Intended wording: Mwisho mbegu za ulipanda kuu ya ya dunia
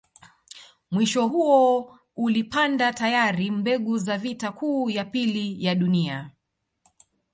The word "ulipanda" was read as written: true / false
false